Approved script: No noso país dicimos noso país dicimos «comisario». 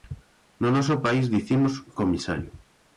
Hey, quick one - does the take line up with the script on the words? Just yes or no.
no